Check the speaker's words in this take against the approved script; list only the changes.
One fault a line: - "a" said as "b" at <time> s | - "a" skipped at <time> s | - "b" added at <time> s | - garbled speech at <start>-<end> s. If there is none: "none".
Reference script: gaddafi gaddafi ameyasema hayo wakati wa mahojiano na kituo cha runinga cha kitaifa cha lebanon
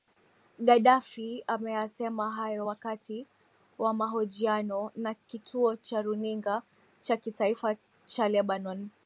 - "gaddafi" skipped at 1.4 s